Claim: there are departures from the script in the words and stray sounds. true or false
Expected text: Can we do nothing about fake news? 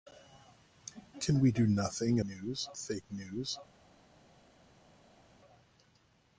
true